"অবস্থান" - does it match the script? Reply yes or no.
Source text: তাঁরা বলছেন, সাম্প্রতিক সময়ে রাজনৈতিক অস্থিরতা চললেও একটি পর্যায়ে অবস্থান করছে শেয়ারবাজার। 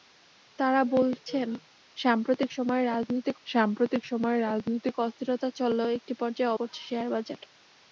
no